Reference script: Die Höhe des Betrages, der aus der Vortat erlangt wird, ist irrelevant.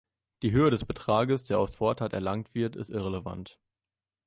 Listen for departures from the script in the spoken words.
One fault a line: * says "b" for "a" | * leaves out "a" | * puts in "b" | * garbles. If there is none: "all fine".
* leaves out "der"